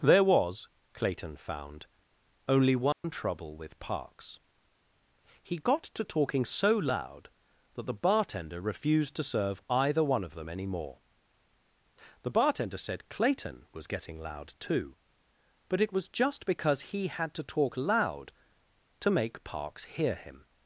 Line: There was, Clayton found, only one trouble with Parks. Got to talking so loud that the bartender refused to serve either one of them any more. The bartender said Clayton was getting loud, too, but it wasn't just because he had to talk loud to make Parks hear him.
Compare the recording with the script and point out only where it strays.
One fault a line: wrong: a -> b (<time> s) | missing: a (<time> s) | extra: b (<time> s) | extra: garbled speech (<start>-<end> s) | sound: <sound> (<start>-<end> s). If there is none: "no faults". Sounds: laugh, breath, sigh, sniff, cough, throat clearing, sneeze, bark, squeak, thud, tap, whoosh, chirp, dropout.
sound: dropout (2.9-3.0 s)
extra: He (5.4 s)
wrong: wasn't -> was (15.9 s)